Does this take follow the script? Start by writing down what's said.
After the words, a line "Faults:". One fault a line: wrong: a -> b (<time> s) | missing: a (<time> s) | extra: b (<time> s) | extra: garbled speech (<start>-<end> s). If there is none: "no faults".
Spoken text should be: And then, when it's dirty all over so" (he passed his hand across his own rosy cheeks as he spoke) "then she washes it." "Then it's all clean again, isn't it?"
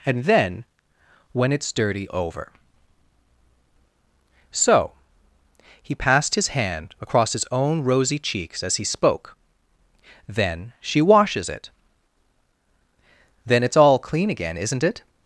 And then, when it's dirty over so" (he passed his hand across his own rosy cheeks as he spoke) "then she washes it." "Then it's all clean again, isn't it?"
Faults:
missing: all (2.1 s)